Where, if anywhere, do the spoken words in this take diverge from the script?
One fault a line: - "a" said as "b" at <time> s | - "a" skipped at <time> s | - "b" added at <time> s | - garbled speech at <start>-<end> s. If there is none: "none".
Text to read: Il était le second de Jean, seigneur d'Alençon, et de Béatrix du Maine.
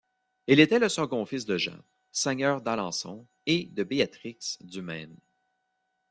- "fils" added at 1.3 s